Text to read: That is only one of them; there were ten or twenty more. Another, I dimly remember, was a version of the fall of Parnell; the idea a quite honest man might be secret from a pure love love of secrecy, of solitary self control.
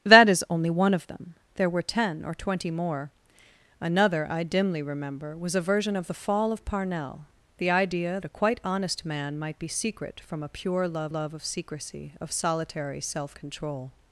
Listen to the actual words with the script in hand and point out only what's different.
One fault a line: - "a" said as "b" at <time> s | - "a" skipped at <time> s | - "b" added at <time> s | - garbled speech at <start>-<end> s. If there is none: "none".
none